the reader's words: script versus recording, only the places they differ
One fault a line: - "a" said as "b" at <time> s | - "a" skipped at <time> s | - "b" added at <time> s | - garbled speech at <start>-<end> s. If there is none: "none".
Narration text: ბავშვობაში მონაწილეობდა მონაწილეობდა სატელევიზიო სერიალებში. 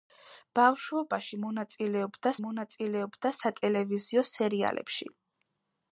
none